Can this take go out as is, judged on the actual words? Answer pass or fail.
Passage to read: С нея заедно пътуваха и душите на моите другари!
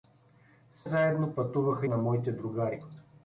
fail